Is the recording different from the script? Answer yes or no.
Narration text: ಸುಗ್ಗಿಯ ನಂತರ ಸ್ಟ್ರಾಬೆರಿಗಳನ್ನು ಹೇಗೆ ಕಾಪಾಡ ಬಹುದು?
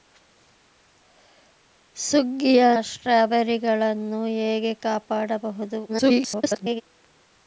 yes